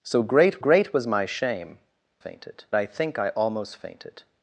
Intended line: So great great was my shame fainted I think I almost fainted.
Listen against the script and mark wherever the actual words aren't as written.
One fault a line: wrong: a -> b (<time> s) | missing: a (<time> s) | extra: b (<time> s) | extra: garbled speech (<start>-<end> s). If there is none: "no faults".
no faults